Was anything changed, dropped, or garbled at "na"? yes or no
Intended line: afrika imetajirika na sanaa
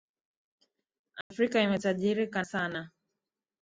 yes